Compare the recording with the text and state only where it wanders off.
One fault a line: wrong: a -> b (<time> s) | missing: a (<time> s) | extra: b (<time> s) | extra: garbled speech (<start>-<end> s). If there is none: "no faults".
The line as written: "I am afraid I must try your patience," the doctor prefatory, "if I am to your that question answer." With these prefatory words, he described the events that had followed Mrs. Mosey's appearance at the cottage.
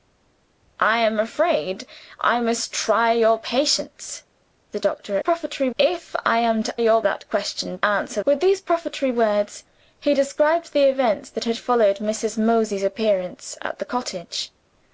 no faults